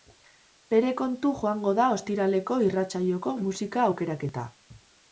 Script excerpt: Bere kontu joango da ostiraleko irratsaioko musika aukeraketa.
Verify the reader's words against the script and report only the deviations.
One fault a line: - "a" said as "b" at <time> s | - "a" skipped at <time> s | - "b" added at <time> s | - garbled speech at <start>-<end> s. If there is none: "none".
none